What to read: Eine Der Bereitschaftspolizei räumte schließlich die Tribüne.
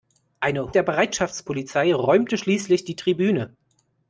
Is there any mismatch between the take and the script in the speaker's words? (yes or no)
no